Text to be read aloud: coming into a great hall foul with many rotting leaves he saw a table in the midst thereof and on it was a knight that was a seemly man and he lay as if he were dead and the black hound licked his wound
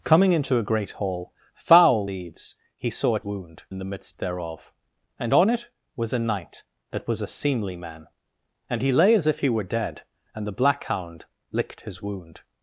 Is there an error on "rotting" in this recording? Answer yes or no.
yes